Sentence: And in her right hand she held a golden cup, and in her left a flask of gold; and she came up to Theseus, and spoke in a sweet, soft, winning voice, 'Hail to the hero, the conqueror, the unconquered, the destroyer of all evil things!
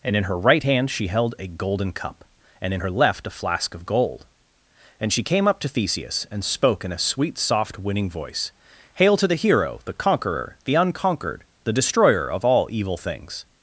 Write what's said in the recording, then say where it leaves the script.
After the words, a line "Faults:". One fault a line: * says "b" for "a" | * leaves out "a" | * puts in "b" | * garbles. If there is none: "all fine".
And in her right hand she held a golden cup, and in her left a flask of gold; and she came up to Theseus, and spoke in a sweet, soft, winning voice, 'Hail to the hero, the conqueror, the unconquered, the destroyer of all evil things!
Faults:
all fine